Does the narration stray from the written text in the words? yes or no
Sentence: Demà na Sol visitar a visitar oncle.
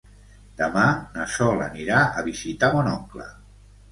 yes